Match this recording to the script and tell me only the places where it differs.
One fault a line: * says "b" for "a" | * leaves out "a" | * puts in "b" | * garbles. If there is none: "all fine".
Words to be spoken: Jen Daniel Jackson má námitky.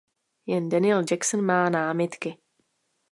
all fine